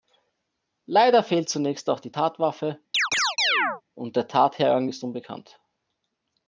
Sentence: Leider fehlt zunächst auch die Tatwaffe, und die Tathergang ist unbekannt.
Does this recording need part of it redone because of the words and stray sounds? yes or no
yes